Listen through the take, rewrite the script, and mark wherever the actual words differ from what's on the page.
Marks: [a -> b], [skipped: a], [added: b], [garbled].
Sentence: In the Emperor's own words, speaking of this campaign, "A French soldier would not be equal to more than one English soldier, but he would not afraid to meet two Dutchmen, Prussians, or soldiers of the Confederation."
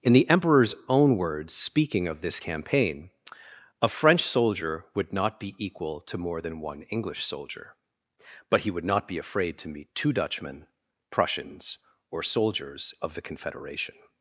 In the Emperor's own words, speaking of this campaign, "A French soldier would not be equal to more than one English soldier, but he would not [added: be] afraid to meet two Dutchmen, Prussians, or soldiers of the Confederation."